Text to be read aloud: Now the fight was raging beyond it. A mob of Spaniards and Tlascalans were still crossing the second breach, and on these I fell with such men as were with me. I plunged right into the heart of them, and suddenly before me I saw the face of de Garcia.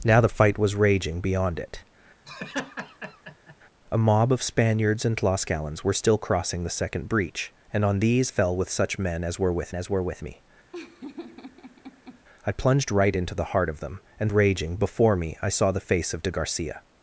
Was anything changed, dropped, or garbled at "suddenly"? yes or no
yes